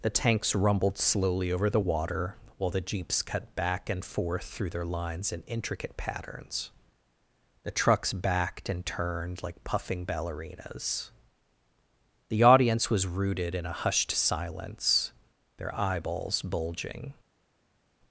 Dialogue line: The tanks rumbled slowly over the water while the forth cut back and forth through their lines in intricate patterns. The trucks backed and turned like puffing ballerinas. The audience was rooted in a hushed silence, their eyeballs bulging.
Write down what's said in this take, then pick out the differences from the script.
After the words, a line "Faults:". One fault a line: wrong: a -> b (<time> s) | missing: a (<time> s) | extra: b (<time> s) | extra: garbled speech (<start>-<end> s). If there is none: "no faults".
The tanks rumbled slowly over the water while the jeeps cut back and forth through their lines in intricate patterns. The trucks backed and turned like puffing ballerinas. The audience was rooted in a hushed silence, their eyeballs bulging.
Faults:
wrong: forth -> jeeps (2.8 s)